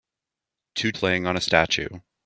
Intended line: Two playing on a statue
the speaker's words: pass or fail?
pass